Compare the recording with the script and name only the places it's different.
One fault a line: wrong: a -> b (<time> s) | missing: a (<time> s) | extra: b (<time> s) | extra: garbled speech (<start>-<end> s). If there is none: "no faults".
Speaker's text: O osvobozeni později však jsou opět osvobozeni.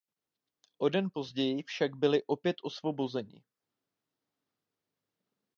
wrong: osvobozeni -> den (0.9 s)
wrong: jsou -> byli (1.9 s)